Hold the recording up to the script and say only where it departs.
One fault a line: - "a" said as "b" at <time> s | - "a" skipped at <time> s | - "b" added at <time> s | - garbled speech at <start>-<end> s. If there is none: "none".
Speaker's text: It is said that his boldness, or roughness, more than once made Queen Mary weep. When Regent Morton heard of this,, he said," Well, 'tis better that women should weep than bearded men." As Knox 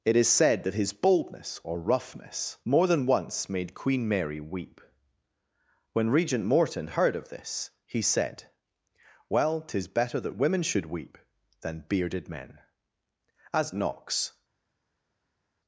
none